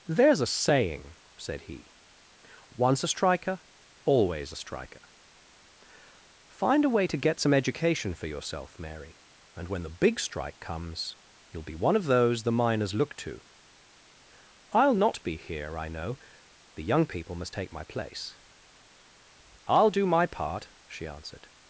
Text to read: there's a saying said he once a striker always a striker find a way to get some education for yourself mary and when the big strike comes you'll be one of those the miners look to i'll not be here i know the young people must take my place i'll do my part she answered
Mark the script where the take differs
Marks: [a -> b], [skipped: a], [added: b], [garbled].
there's a saying said he once a striker always a striker find a way to get some education for yourself mary and when the big strike comes you'll be one of those the miners look to i'll not be here i know the young people must take my place i'll do my part she answered